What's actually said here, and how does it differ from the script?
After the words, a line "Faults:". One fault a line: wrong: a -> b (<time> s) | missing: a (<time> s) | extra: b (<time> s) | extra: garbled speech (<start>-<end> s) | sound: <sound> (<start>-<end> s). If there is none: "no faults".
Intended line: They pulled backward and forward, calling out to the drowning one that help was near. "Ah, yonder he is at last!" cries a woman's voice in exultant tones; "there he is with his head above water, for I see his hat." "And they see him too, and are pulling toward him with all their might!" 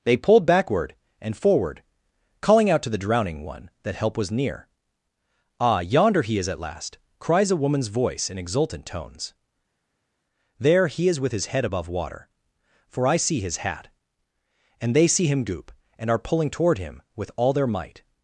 They pulled backward and forward, calling out to the drowning one that help was near. "Ah, yonder he is at last!" cries a woman's voice in exultant tones; "there he is with his head above water, for I see his hat." "And they see him goop, and are pulling toward him with all their might!"
Faults:
wrong: too -> goop (15.4 s)